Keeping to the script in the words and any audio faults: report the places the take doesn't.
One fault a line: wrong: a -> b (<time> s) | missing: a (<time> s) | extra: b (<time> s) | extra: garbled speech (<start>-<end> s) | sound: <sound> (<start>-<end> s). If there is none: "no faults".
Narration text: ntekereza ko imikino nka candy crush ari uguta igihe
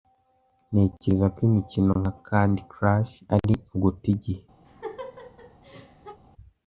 sound: laugh (4.6-6.2 s)